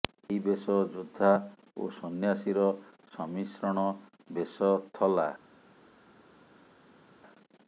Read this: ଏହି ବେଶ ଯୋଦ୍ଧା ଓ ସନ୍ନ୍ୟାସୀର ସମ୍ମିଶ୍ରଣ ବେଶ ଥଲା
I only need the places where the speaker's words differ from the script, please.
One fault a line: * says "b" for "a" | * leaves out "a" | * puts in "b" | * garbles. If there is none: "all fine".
all fine